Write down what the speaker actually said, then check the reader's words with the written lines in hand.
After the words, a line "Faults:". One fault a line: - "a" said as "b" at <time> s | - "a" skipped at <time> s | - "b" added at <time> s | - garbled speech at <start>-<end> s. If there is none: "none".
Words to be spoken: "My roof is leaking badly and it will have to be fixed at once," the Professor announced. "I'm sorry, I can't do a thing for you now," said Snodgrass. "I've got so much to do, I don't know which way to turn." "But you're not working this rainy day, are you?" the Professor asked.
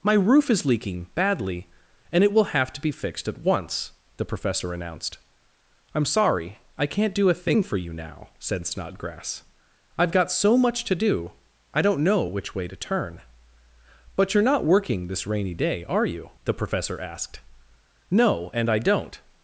"My roof is leaking badly and it will have to be fixed at once," the Professor announced. "I'm sorry, I can't do a thing for you now," said Snodgrass. "I've got so much to do, I don't know which way to turn." "But you're not working this rainy day, are you?" the Professor asked. "No, and I don't
Faults:
- "No and I don't" added at 18.1 s